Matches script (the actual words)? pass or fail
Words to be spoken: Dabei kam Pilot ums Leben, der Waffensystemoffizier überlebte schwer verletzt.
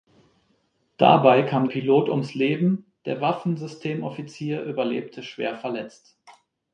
pass